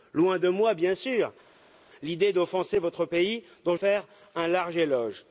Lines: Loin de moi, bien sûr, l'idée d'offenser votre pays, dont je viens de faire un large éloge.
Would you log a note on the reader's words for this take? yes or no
yes